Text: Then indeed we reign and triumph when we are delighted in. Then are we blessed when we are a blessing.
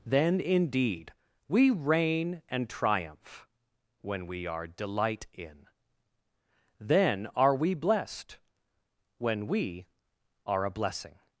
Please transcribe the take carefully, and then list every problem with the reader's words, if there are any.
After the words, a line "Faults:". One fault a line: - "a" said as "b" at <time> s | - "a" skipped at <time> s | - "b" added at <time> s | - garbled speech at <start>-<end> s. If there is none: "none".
Then indeed we reign and triumph when we are delight in. Then are we blessed when we are a blessing.
Faults:
- "delighted" said as "delight" at 4.7 s